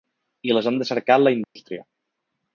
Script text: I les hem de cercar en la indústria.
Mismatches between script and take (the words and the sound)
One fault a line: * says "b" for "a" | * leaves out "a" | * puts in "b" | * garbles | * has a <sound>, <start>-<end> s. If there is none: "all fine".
* has a dropout, 1.4-1.6 s